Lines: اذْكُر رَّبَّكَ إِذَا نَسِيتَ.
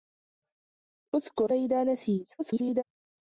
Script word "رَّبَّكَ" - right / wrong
wrong